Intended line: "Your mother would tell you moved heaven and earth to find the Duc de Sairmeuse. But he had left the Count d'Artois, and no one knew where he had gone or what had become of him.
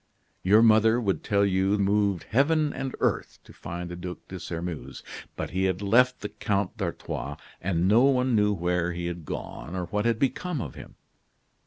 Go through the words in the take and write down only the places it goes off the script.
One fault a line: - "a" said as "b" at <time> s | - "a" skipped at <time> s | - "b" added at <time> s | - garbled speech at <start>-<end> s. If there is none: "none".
none